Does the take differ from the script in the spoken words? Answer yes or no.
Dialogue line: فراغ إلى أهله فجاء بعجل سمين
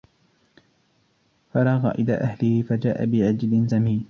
no